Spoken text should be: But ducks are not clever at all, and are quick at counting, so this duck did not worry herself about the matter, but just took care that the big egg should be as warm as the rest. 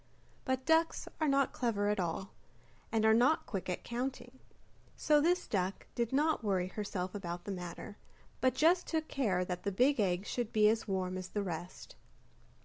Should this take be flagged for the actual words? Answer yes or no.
yes